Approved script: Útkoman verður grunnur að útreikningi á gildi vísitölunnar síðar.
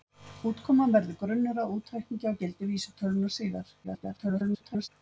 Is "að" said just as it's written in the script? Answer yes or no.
yes